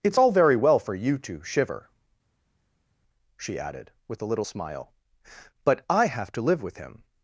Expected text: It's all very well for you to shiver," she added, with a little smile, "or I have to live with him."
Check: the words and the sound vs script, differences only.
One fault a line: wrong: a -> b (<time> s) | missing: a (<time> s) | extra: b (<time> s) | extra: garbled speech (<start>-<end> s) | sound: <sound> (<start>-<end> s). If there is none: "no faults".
wrong: or -> but (5.7 s)